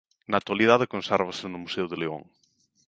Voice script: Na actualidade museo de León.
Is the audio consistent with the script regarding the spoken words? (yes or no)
no